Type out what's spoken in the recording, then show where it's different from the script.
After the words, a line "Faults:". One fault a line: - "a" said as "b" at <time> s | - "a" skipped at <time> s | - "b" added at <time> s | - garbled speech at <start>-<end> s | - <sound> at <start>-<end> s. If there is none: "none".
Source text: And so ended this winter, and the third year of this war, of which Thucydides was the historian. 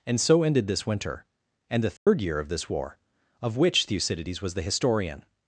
And so ended this winter, and the third year of this war, of which Thucydides was the historian.
Faults:
- dropout at 2.0-2.1 s